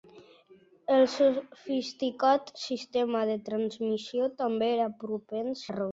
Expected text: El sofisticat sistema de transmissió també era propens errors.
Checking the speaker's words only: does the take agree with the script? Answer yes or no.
yes